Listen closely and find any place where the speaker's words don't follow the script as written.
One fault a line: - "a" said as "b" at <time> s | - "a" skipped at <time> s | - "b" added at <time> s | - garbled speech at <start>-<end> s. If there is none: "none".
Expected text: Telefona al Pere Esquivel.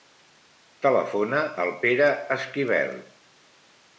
none